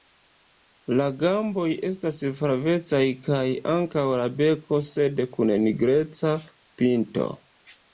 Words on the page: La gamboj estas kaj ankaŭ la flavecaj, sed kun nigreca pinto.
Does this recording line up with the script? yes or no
no